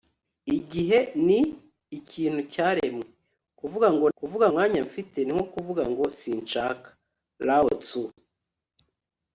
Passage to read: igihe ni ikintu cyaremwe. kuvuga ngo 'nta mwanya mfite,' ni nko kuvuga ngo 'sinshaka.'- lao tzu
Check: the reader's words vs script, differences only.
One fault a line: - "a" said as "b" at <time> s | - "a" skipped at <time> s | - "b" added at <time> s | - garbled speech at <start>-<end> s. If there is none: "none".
- "nta" said as "kuvuga" at 4.2 s